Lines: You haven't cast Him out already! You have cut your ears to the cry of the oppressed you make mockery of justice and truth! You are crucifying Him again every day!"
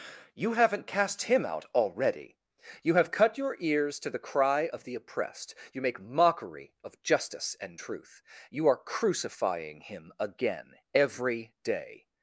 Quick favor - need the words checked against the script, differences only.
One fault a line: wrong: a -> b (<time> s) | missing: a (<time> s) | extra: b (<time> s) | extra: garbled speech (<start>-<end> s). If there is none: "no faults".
no faults